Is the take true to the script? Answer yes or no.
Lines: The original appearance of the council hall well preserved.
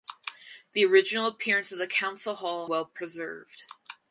yes